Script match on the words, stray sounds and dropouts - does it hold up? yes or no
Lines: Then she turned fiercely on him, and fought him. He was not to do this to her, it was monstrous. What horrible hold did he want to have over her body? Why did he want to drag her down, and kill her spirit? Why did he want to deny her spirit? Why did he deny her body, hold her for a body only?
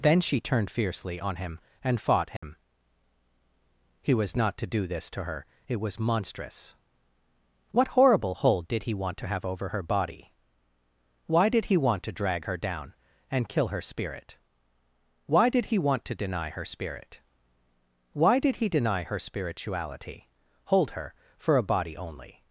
no